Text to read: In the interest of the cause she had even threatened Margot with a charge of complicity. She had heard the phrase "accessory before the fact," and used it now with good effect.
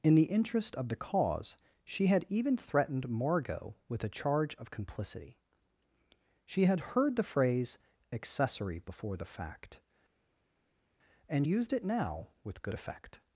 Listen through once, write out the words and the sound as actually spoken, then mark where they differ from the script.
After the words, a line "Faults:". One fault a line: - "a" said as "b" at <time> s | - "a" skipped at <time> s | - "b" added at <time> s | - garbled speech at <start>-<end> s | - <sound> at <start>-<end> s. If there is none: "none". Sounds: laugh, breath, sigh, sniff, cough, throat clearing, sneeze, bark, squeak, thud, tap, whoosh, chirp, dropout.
In the interest of the cause she had even threatened Margot with a charge of complicity. She had heard the phrase "accessory before the fact," and used it now with good effect.
Faults:
none